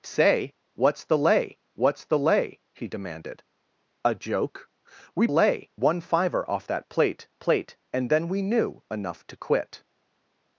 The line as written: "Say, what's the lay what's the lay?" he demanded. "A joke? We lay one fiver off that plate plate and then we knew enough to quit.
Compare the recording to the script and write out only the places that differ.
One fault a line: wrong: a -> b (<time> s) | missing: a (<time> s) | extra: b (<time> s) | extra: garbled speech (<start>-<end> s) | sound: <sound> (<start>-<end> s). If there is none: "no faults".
no faults